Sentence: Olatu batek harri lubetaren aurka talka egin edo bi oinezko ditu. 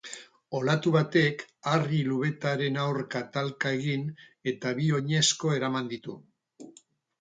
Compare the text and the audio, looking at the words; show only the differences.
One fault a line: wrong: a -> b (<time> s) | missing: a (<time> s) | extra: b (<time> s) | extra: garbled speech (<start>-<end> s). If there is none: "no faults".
wrong: edo -> eta (4.5 s)
extra: eraman (5.6 s)